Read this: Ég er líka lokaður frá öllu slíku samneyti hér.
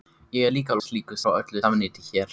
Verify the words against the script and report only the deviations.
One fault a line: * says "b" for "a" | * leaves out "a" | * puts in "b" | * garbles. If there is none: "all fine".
* says "slíku" for "lokaður"
* leaves out "slíku"